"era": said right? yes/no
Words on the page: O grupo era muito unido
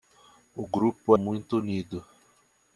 no